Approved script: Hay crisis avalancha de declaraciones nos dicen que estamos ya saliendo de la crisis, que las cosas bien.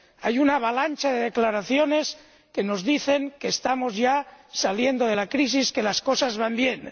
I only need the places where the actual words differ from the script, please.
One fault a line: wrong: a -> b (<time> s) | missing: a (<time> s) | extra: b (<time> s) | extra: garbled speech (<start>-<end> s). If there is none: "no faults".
wrong: crisis -> una (0.4 s)
extra: que (2.5 s)
extra: van (6.4 s)